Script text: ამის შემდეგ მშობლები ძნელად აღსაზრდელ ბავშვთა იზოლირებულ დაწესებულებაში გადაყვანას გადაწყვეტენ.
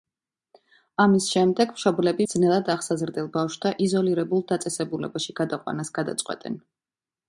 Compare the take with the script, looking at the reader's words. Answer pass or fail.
pass